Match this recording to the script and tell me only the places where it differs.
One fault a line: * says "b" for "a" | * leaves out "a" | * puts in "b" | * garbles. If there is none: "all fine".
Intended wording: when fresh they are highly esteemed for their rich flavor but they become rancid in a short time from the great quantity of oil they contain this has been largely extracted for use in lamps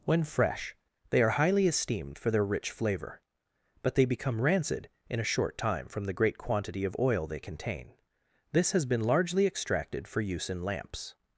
all fine